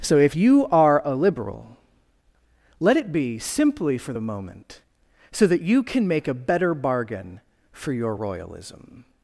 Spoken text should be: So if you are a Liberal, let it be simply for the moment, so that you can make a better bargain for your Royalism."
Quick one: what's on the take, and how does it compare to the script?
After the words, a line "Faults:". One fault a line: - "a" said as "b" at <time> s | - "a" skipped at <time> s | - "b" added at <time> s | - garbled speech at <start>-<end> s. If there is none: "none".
So if you are a Liberal, let it be simply for the moment, so that you can make a better bargain for your Royalism."
Faults:
none